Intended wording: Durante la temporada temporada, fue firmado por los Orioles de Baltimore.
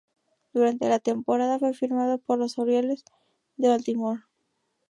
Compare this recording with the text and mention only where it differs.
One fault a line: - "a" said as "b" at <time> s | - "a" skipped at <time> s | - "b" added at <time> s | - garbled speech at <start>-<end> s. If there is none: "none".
- "temporada" skipped at 1.6 s